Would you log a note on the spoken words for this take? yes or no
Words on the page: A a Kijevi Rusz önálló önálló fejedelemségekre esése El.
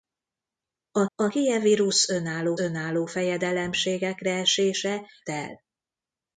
no